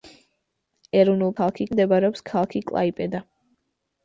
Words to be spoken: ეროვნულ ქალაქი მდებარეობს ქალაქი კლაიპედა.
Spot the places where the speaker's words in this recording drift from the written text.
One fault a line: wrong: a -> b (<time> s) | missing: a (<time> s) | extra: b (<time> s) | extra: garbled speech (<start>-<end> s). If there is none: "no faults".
no faults